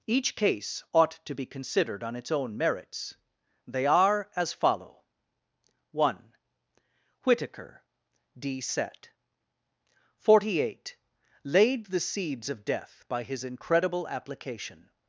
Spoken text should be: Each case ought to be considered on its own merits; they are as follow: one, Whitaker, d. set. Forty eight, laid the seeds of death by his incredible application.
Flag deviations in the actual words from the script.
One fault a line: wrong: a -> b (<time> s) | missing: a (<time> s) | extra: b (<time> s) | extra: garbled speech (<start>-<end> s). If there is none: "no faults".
no faults